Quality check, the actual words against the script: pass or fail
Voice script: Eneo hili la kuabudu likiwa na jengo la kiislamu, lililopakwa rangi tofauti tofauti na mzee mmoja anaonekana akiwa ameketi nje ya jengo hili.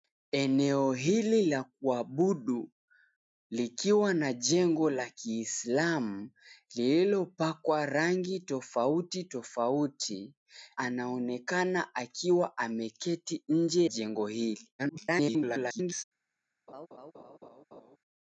fail